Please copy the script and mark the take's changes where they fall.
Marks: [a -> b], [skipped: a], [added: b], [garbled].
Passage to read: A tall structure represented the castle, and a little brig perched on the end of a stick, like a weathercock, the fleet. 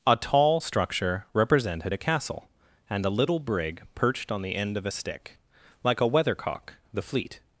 A tall structure represented [the -> a] castle, and a little brig perched on the end of a stick, like a weathercock, the fleet.